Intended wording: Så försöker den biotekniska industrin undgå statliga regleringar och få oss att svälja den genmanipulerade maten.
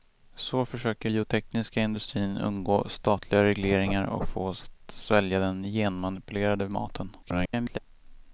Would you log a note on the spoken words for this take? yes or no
yes